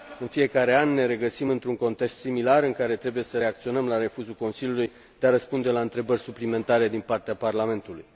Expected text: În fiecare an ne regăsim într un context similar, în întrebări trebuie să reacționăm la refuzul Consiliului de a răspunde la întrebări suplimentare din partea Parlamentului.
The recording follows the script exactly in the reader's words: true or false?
false